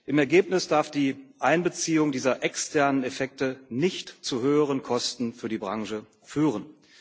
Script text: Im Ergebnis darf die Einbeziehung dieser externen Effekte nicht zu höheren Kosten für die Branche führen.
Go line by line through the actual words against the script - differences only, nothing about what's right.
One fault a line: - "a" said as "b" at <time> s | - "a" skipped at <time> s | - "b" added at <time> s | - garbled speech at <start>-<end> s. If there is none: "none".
none